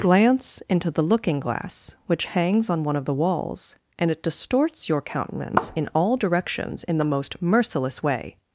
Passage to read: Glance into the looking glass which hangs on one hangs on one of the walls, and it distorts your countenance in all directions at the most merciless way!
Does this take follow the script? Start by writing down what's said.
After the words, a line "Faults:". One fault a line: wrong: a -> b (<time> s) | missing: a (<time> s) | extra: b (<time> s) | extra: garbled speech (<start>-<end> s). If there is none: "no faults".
Glance into the looking glass which hangs on one of the walls, and it distorts your countenance in all directions in the most merciless way!
Faults:
missing: hangs on one (2.9 s)
wrong: at -> in (6.8 s)